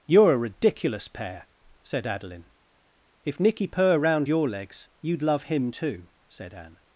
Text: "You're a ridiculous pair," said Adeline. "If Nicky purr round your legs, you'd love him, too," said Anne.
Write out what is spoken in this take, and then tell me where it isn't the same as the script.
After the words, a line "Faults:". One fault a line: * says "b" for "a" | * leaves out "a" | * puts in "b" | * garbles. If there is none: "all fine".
"You're a ridiculous pair," said Adeline. "If Nicky purr round your legs, you'd love him, too," said Anne.
Faults:
all fine